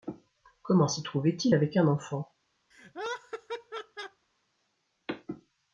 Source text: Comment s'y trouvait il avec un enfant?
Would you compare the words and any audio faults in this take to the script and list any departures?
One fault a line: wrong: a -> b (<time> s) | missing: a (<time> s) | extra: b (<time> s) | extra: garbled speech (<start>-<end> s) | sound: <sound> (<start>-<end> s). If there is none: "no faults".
sound: laugh (2.7-4.3 s)